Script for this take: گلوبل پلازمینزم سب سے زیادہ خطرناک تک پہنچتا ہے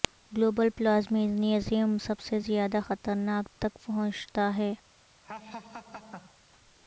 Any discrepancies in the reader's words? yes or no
no